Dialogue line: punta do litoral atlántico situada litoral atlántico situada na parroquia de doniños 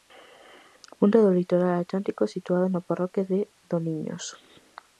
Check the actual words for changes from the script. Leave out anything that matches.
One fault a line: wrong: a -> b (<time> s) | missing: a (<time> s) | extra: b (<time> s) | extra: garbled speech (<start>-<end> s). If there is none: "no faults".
missing: litoral atlántico situada (2.7 s)